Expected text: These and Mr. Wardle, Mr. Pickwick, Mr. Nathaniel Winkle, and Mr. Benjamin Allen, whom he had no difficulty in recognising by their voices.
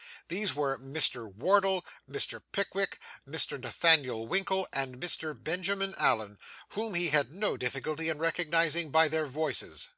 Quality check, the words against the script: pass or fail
fail